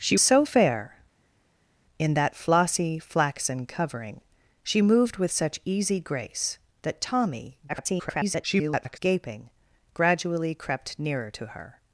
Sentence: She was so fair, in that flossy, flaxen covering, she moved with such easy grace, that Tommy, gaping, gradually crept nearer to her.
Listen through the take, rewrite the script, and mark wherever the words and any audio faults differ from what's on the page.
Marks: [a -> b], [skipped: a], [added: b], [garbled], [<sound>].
She [skipped: was] so fair, in that flossy, flaxen covering, she moved with such easy grace, that Tommy, [garbled] gaping, gradually crept nearer to her.